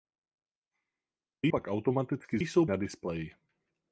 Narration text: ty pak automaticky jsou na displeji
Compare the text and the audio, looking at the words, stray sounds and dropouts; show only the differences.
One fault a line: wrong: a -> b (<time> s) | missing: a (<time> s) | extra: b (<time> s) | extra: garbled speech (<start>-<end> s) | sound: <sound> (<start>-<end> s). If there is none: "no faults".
no faults